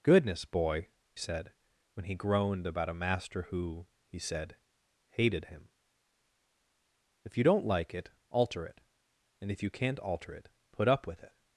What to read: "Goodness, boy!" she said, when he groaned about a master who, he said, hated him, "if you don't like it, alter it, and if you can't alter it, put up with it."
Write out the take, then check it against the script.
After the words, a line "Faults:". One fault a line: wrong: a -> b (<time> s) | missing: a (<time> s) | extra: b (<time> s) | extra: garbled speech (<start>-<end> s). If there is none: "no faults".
"Goodness, boy!" said, when he groaned about a master who, he said, hated him, "if you don't like it, alter it, and if you can't alter it, put up with it."
Faults:
missing: she (0.9 s)